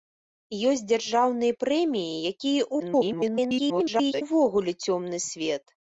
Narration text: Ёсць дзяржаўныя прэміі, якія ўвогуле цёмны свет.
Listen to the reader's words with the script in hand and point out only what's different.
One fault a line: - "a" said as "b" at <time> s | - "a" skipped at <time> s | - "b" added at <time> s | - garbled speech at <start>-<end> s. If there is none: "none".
- garbled speech at 2.8-4.2 s